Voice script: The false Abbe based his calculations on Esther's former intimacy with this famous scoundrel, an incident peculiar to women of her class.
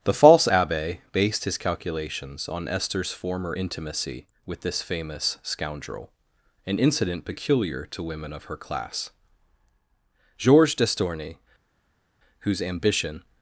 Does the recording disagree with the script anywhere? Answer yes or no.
yes